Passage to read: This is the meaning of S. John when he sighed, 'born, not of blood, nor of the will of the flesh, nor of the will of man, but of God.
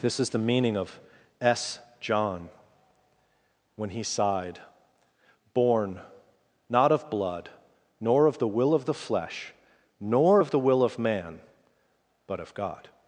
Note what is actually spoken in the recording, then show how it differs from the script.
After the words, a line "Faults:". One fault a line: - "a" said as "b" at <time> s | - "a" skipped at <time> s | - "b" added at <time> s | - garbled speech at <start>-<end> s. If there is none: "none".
This is the meaning of S. John when he sighed, 'born, not of blood, nor of the will of the flesh, nor of the will of man, but of God.
Faults:
none